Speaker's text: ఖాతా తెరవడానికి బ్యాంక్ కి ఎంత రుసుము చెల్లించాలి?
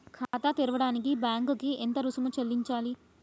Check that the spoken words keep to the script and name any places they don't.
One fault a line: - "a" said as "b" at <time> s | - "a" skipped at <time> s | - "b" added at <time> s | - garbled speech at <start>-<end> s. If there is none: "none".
none